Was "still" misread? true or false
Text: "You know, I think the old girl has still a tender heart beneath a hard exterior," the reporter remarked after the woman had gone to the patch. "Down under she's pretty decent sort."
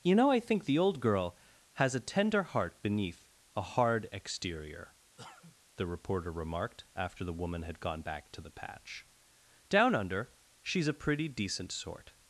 true